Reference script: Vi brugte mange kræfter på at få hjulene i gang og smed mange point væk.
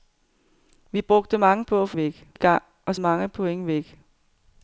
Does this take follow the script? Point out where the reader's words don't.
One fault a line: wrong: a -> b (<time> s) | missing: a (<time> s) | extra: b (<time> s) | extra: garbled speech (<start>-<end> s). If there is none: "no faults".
missing: kræfter (1.6 s)
wrong: hjulene -> væk (2.0 s)
missing: smed (2.9 s)